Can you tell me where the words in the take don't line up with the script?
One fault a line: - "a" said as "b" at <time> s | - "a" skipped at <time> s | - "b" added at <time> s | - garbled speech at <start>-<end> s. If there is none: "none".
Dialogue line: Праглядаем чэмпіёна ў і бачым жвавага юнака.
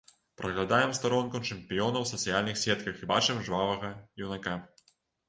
- "старонку" added at 1.0 s
- "сацыяльных сетках" added at 2.1 s